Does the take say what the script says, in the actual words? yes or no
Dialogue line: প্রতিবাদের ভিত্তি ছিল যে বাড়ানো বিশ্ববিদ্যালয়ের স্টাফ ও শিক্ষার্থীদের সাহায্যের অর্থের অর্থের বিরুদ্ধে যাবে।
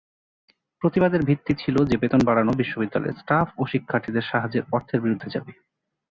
no